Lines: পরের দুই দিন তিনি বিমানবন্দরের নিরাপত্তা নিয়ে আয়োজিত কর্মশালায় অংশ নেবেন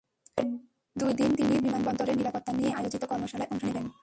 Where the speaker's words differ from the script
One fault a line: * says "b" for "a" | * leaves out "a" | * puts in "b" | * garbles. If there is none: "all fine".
all fine